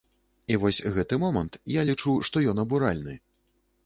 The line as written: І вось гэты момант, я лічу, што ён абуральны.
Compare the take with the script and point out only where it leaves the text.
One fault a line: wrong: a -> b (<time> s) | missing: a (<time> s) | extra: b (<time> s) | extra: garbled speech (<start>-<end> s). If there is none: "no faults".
no faults